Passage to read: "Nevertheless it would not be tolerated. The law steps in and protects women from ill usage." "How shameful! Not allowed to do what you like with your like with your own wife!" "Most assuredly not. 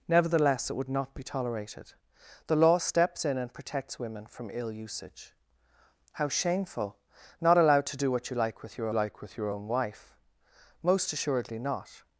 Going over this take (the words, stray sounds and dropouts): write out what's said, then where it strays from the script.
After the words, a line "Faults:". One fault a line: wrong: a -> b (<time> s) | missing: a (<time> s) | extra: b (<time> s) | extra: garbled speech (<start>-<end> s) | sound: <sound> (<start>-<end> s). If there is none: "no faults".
"Nevertheless it would not be tolerated. The law steps in and protects women from ill usage." "How shameful! Not allowed to do what you like with your like with your own wife!" "Most assuredly not.
Faults:
no faults